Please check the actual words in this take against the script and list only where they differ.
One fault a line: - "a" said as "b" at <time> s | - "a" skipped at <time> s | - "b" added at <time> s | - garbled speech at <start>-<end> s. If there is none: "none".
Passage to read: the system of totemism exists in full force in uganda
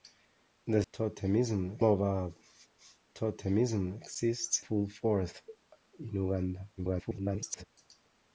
- "system" said as "totemism" at 0.9 s
- "in" skipped at 4.6 s
- garbled speech at 6.8-7.6 s